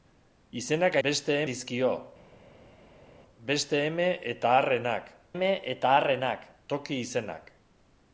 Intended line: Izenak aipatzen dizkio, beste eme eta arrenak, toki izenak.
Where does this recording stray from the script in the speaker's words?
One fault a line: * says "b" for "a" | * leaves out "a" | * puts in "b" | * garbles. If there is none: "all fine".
* says "beste" for "aipatzen"
* puts in "eme eta arrenak"